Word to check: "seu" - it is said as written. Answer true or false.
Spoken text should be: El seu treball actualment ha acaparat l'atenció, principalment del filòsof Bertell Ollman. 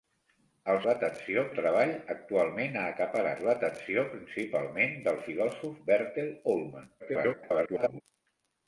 false